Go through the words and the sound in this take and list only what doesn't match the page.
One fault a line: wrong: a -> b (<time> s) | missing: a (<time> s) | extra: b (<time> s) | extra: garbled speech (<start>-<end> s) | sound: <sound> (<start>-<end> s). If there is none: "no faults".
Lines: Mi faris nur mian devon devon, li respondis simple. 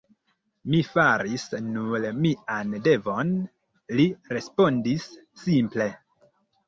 missing: devon (3.4 s)